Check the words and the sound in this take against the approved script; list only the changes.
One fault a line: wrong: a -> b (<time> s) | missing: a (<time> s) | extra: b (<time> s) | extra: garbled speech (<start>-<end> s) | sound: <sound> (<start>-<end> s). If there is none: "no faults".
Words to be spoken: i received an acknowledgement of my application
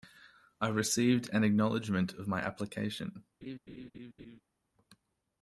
sound: laugh (3.4-4.4 s)